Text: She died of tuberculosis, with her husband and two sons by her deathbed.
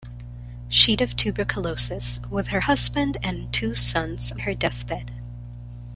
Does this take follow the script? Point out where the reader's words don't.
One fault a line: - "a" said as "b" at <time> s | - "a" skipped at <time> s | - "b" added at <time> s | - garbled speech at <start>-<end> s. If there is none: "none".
- "died" skipped at 1.0 s
- "by" skipped at 4.3 s